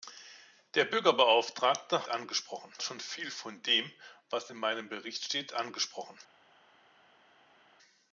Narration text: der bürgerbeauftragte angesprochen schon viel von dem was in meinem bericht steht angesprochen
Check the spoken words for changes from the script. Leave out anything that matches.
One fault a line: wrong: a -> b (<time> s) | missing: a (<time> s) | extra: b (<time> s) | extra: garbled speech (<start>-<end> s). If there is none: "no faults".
no faults